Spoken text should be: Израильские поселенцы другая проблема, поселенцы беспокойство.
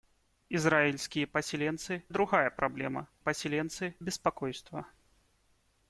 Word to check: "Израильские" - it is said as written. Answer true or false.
true